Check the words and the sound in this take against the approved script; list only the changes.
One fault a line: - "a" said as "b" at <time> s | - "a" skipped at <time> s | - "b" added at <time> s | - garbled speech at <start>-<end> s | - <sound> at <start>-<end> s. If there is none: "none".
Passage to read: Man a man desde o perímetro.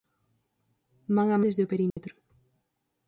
- "man" skipped at 1.4 s
- dropout at 1.9-2.0 s